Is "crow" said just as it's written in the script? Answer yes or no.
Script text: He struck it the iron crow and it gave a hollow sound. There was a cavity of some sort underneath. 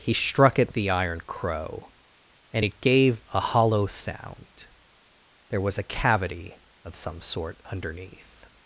yes